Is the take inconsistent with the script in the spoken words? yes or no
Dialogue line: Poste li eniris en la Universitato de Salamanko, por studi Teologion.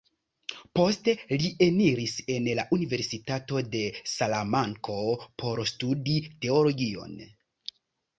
no